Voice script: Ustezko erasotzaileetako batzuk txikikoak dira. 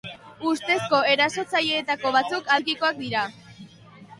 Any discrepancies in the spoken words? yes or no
no